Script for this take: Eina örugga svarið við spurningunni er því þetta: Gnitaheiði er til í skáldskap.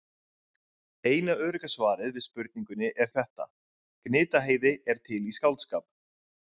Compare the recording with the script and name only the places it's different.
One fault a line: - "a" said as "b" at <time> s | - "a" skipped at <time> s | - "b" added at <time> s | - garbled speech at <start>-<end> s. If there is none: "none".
- "því" skipped at 3.1 s